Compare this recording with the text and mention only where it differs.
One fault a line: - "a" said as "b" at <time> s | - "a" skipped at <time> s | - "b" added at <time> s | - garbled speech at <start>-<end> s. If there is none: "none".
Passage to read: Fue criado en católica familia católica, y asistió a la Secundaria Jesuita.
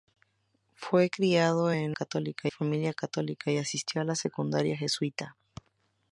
none